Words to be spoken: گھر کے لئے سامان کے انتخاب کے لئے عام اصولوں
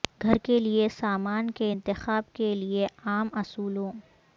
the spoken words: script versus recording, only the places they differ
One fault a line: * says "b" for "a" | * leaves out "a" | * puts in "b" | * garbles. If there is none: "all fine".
all fine